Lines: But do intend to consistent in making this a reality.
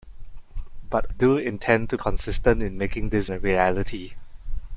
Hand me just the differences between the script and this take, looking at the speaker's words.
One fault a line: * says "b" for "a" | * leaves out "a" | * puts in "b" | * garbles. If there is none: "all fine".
all fine